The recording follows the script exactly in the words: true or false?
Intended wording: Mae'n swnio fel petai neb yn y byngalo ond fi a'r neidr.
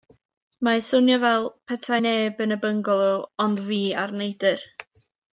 true